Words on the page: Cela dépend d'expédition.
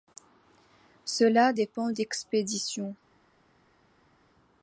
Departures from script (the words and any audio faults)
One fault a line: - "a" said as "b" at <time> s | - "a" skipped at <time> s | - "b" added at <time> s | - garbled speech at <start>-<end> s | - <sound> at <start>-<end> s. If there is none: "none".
none